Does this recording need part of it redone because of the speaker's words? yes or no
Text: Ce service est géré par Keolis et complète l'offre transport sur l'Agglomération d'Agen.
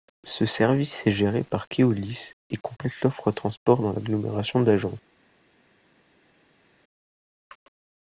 yes